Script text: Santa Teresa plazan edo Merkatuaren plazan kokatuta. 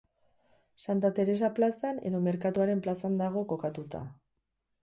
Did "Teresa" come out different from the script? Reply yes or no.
no